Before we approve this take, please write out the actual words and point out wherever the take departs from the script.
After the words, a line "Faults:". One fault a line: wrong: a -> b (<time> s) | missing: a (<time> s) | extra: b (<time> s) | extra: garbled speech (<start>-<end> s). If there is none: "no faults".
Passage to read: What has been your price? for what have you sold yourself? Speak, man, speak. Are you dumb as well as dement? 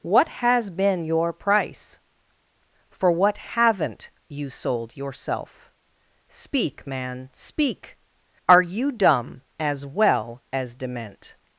What has been your price? for what haven't you sold yourself? Speak, man, speak. Are you dumb as well as dement?
Faults:
wrong: have -> haven't (3.4 s)